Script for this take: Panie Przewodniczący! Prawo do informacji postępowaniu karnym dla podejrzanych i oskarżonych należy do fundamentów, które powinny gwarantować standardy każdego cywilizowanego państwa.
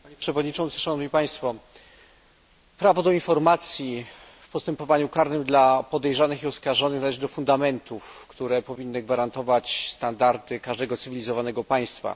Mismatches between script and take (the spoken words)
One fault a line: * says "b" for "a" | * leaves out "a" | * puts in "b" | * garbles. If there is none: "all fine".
* puts in "w"